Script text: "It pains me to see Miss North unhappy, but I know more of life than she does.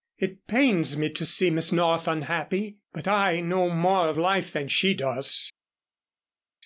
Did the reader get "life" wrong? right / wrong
right